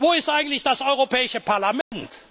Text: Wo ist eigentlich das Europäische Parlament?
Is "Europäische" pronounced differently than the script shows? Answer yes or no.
no